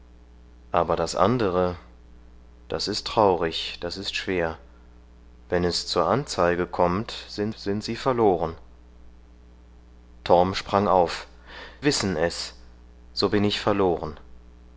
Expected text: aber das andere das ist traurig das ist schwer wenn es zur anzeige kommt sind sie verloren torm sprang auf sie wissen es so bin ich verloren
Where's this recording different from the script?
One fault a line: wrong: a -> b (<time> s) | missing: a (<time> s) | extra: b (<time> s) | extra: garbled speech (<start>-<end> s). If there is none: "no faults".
extra: sind (7.5 s)
missing: sie (11.3 s)